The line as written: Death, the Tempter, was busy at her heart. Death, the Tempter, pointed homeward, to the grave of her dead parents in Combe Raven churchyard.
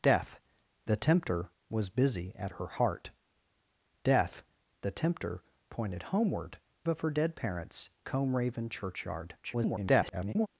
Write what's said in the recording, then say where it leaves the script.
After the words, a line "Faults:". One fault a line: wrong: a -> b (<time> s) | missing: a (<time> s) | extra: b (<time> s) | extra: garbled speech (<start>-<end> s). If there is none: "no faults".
Death, the Tempter, was busy at her heart. Death, the Tempter, pointed homeward, of her dead parents Combe Raven churchyard. [garbled]
Faults:
missing: to the grave (6.6 s)
missing: in (7.9 s)
extra: garbled speech (9.4-10.5 s)